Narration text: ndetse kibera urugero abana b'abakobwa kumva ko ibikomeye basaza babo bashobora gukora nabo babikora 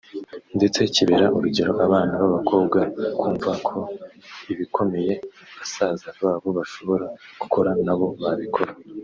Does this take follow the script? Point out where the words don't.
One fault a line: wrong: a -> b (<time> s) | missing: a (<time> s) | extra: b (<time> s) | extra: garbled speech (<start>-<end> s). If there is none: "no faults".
no faults